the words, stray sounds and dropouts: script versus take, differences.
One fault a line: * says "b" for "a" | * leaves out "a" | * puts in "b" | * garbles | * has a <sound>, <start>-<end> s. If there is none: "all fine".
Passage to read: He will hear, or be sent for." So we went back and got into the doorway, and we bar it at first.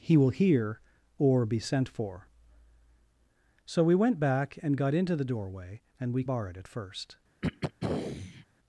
* has a throat clearing, 7.4-8.5 s